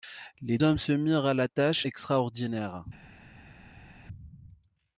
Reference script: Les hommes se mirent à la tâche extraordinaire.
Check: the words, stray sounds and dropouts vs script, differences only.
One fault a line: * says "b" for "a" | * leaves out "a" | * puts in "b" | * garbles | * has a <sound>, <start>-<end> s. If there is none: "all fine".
all fine